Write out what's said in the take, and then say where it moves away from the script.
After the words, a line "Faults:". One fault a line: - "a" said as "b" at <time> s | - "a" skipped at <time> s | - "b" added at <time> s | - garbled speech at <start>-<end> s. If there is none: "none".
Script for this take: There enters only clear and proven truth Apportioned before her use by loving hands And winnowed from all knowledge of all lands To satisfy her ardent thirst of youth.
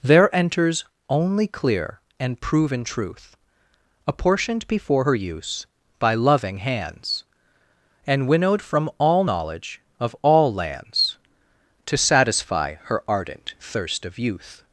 There enters only clear and proven truth Apportioned before her use by loving hands And winnowed from all knowledge of all lands To satisfy her ardent thirst of youth.
Faults:
none